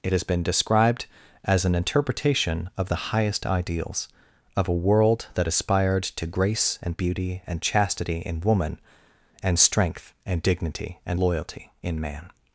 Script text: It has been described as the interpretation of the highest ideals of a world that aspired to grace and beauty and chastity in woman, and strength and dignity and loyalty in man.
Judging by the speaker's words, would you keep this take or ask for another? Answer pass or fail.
fail